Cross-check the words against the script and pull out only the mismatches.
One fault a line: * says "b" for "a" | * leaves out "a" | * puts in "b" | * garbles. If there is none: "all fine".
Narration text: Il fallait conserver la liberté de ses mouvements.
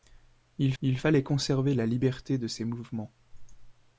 * puts in "il"